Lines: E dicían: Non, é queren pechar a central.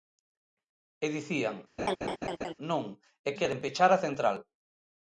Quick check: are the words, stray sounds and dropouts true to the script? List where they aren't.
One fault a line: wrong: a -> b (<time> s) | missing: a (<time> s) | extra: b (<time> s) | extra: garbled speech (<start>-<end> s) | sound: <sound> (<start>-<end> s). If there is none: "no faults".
sound: laugh (1.8-2.5 s)